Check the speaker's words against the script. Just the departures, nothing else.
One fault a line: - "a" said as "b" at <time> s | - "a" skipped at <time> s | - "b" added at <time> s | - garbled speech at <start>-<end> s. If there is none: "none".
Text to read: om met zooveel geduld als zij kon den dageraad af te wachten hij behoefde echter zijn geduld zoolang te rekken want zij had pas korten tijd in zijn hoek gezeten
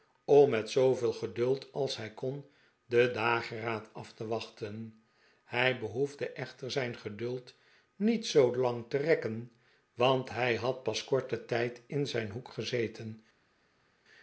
- "zij" said as "hij" at 2.0 s
- "niet" added at 8.0 s
- "zij" said as "hij" at 10.3 s